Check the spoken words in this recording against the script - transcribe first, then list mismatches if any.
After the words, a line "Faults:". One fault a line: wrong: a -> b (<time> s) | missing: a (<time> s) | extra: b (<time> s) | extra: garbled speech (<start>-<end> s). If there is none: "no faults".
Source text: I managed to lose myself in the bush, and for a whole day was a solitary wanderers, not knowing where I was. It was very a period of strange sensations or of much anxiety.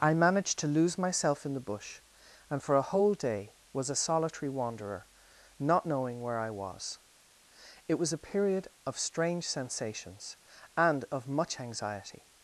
I managed to lose myself in the bush, and for a whole day was a solitary wanderer, not knowing where I was. It was a period of strange sensations and of much anxiety.
Faults:
wrong: wanderers -> wanderer (4.5 s)
missing: very (8.1 s)
wrong: or -> and (10.8 s)